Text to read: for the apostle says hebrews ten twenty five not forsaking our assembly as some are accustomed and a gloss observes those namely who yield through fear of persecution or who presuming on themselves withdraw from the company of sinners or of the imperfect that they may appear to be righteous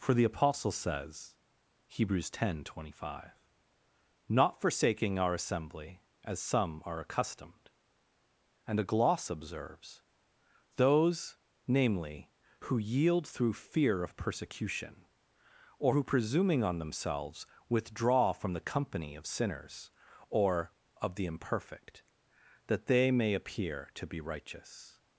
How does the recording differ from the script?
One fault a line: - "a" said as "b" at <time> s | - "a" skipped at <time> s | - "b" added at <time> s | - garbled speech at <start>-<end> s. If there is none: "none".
none